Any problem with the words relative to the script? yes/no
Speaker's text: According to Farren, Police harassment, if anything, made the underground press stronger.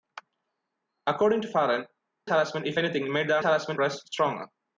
yes